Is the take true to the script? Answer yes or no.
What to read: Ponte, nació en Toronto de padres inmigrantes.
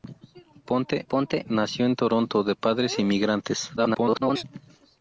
no